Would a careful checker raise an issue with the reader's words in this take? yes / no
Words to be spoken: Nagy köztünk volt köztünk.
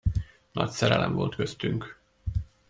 yes